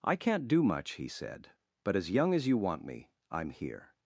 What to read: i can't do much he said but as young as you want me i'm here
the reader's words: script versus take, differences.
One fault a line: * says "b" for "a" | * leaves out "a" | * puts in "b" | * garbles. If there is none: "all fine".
all fine